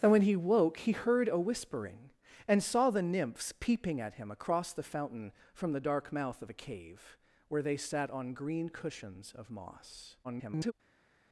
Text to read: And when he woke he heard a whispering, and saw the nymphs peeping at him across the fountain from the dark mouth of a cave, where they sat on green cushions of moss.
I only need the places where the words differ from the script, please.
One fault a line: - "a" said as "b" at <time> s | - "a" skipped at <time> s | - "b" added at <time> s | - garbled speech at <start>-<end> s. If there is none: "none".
- garbled speech at 10.2-10.7 s